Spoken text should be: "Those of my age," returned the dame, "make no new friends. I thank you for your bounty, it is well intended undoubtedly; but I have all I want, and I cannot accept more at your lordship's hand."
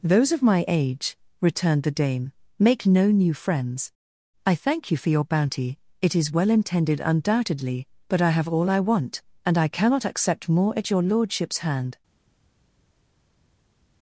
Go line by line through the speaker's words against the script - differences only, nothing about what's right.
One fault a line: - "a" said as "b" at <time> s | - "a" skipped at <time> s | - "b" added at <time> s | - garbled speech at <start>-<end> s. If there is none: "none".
none